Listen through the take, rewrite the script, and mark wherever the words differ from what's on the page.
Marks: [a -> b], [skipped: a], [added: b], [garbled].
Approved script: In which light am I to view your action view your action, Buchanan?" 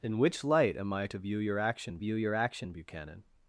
In which light am I to view your action view your action, Buchanan?"